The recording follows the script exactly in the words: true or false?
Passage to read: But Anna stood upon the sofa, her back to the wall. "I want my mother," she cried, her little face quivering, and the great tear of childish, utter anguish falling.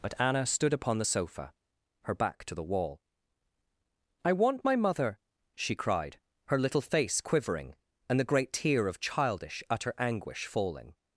true